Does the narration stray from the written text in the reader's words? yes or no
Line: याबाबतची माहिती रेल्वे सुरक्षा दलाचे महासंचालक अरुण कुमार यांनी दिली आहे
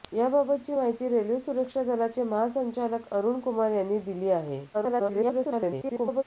yes